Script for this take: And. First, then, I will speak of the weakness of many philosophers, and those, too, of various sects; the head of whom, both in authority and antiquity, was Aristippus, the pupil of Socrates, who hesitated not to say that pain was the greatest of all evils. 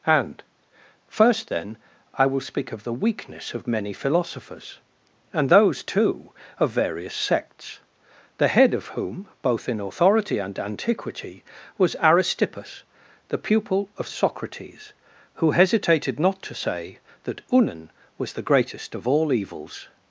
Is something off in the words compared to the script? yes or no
yes